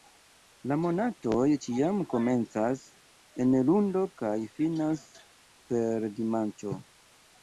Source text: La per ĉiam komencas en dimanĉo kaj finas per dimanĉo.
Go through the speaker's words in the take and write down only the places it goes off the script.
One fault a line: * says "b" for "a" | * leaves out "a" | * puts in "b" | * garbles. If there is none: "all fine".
* says "monatoj" for "per"
* says "lundo" for "dimanĉo"